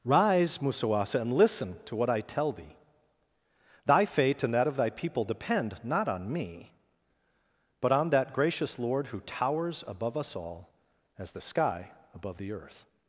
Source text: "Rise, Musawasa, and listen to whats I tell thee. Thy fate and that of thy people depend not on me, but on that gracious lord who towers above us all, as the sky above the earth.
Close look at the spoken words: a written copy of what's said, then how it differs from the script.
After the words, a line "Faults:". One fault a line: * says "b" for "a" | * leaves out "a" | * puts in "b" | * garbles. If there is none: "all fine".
"Rise, Musawasa, and listen to what I tell thee. Thy fate and that of thy people depend not on me, but on that gracious lord who towers above us all, as the sky above the earth.
Faults:
* says "what" for "whats"